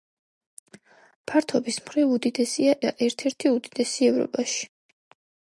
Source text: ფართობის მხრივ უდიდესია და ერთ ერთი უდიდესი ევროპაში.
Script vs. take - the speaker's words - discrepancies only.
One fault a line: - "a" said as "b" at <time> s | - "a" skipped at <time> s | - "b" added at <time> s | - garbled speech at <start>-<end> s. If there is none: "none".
none